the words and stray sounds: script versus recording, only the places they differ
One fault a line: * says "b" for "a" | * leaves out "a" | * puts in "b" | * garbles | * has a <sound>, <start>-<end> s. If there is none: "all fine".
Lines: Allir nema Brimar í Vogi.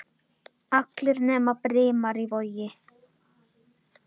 all fine